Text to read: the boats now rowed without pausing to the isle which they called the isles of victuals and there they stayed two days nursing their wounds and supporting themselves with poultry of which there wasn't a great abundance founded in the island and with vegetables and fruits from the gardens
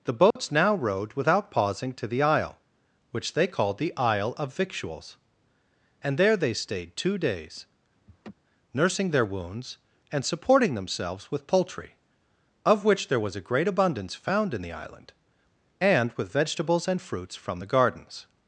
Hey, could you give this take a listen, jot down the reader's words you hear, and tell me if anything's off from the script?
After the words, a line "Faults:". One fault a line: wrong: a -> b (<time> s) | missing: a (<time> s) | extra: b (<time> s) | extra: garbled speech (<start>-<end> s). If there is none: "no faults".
the boats now rowed without pausing to the isle which they called the isle of victuals and there they stayed two days nursing their wounds and supporting themselves with poultry of which there was a great abundance found in the island and with vegetables and fruits from the gardens
Faults:
wrong: isles -> isle (4.0 s)
wrong: wasn't -> was (13.2 s)
wrong: founded -> found (14.1 s)